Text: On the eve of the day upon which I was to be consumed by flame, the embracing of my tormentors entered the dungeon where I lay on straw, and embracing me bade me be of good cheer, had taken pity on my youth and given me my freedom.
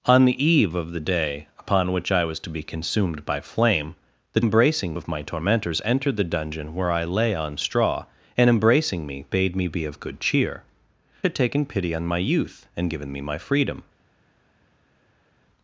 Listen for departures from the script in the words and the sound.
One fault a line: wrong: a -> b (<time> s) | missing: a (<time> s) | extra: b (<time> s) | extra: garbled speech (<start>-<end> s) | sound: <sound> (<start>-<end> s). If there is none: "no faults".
no faults